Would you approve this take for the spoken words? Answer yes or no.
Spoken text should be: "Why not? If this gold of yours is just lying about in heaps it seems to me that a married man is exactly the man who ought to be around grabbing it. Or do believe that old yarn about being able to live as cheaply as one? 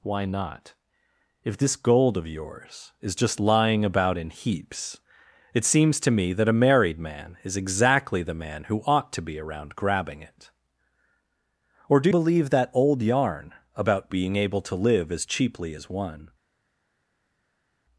yes